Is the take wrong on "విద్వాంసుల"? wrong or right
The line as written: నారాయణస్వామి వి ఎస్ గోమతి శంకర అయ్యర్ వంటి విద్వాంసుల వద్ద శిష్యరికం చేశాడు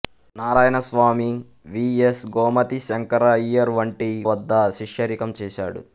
wrong